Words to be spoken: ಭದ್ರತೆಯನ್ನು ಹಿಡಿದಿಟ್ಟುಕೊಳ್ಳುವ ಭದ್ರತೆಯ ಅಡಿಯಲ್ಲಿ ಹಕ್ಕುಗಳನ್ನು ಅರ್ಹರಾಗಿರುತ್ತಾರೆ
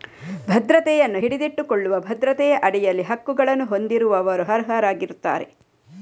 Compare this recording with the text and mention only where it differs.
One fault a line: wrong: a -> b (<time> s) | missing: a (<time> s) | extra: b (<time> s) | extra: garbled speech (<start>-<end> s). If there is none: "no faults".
extra: ಹೊಂದಿರುವವರು (3.6 s)